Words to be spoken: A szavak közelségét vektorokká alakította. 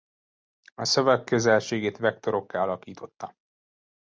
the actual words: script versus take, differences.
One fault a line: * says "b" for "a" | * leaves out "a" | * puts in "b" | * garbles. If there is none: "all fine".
all fine